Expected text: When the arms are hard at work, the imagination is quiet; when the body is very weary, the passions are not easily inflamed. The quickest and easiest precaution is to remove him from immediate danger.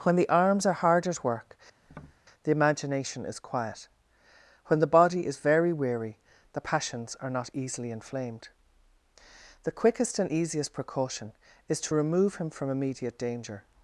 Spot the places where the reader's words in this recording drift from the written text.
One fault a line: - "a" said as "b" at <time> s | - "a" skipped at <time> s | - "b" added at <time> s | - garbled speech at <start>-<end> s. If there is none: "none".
none